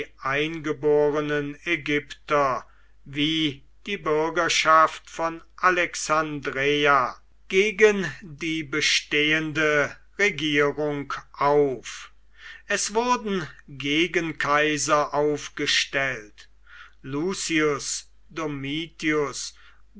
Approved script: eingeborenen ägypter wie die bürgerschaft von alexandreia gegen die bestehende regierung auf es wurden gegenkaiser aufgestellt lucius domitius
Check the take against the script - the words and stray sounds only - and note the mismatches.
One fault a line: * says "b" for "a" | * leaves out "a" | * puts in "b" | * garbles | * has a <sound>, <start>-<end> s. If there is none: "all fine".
all fine